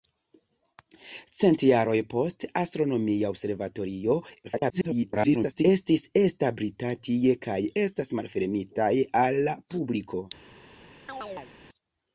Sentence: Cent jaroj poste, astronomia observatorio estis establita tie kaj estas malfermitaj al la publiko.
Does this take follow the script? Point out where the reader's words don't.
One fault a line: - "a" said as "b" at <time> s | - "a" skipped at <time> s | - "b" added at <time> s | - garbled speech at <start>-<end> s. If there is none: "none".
- garbled speech at 4.4-5.6 s